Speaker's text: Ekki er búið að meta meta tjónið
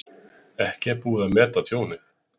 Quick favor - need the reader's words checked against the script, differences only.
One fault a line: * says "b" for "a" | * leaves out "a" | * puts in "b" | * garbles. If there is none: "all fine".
* leaves out "meta"